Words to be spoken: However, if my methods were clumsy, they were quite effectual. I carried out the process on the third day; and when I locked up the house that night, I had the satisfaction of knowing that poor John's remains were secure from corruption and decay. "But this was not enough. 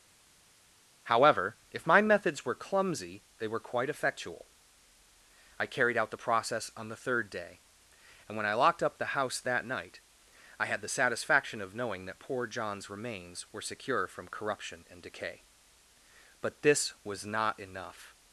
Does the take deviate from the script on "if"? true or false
false